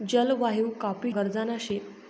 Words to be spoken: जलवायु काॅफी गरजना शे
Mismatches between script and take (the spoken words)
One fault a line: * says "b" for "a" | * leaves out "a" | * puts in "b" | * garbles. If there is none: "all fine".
all fine